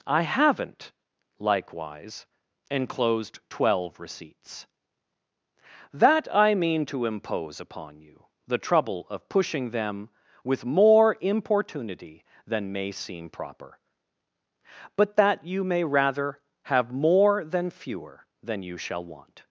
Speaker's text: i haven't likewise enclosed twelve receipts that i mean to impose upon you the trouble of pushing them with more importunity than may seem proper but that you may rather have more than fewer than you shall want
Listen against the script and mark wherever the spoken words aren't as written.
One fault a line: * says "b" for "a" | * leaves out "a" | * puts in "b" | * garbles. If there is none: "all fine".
all fine